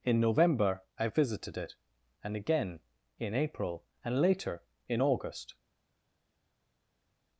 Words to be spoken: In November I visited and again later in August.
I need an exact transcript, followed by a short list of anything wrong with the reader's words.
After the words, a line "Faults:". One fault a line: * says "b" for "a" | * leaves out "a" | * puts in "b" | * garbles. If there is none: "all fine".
In November I visited it, and again in April, and later in August.
Faults:
* puts in "it"
* puts in "in April and"